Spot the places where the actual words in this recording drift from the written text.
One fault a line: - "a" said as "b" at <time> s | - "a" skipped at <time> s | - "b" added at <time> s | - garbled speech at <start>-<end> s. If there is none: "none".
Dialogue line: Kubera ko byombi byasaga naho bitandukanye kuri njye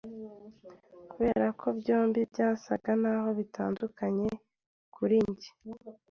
none